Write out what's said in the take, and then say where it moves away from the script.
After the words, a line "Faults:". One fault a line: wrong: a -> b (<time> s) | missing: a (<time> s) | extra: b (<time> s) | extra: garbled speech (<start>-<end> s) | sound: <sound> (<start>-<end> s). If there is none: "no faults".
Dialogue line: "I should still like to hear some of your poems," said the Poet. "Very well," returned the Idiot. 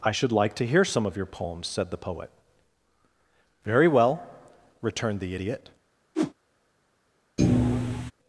"I should like to hear some of your poems," said the Poet. "Very well," returned the Idiot.
Faults:
missing: still (0.3 s)
sound: whoosh (6.1-6.3 s)
sound: thud (7.4-8.1 s)